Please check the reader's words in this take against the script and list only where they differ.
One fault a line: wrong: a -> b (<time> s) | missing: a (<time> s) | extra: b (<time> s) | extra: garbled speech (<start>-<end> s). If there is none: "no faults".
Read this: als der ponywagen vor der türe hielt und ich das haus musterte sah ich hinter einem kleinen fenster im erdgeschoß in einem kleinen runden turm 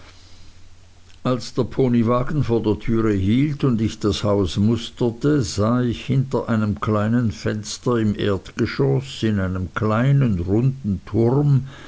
no faults